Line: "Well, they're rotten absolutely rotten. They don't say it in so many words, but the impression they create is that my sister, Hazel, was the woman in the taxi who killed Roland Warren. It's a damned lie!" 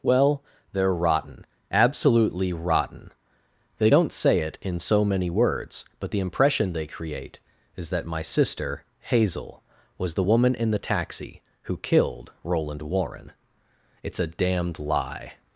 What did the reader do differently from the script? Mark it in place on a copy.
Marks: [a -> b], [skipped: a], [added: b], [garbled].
"Well, they're rotten absolutely rotten. They don't say it in so many words, but the impression they create is that my sister, Hazel, was the woman in the taxi who killed Roland Warren. It's a damned lie!"